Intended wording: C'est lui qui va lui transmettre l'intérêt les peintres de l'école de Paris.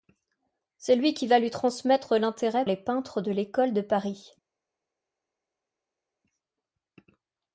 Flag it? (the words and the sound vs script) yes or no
no